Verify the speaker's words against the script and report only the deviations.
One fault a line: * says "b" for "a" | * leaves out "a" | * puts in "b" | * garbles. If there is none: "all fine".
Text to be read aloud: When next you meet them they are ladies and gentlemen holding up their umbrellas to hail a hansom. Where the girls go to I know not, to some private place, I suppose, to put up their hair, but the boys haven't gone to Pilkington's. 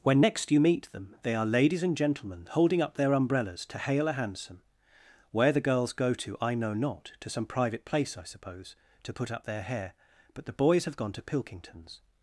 * says "have" for "haven't"